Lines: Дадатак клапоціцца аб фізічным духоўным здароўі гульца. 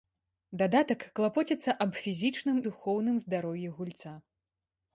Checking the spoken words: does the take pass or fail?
pass